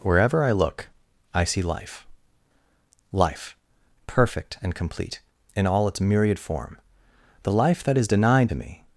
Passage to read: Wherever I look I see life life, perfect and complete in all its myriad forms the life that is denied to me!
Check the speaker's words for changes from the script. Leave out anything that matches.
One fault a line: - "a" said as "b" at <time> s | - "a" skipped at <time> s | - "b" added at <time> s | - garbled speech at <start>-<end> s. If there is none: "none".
- "forms" said as "form" at 6.4 s